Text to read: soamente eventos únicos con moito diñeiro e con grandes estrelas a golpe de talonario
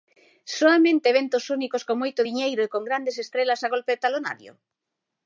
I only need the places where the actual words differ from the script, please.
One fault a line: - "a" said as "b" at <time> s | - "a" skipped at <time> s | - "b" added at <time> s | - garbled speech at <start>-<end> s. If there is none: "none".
none